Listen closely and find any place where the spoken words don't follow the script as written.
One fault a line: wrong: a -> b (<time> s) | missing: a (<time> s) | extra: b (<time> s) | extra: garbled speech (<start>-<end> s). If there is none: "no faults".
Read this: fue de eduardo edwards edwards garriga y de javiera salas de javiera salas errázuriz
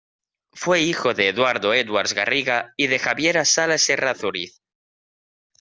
extra: hijo (0.8 s)
missing: edwards (2.1 s)
missing: de javiera salas (3.9 s)